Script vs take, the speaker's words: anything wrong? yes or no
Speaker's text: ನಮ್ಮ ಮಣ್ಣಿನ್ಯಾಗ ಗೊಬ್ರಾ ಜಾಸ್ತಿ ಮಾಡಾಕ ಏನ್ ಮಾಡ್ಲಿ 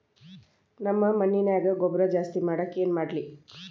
no